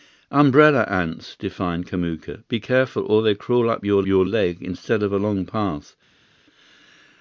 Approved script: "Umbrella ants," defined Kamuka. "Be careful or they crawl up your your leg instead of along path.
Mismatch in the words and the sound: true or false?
false